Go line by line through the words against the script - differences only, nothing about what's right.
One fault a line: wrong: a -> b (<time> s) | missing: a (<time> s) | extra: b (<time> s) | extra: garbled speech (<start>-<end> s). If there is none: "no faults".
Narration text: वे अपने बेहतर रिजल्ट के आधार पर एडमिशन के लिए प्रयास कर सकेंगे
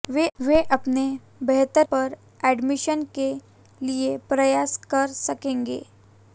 missing: रिजल्ट के आधार (1.9 s)